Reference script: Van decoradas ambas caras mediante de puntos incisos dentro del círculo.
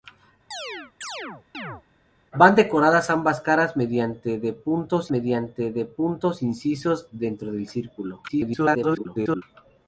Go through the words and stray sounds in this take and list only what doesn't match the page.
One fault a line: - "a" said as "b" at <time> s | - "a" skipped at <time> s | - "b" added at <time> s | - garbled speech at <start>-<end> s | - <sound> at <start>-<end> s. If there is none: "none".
- chirp at 0.5-1.8 s
- "mediante de puntos" added at 5.1 s
- garbled speech at 8.3-9.4 s